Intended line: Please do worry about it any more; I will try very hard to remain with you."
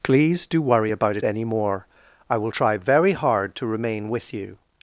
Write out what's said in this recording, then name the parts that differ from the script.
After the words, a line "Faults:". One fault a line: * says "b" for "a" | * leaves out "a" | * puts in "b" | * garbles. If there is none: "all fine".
Please do worry about it any more; I will try very hard to remain with you."
Faults:
all fine